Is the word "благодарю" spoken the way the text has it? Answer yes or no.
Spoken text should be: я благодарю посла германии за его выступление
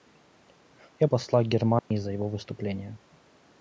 no